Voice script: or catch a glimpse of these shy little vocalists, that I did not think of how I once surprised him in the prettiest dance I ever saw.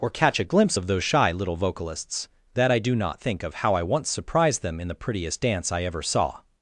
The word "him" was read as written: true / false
false